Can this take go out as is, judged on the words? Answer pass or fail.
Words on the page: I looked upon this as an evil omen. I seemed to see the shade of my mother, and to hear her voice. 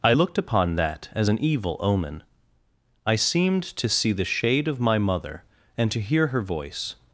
fail